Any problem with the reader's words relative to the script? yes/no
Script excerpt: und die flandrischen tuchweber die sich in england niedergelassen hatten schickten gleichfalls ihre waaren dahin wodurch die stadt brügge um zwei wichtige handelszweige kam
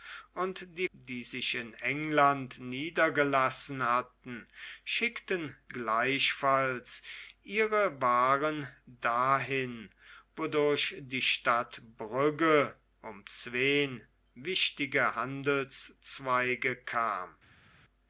yes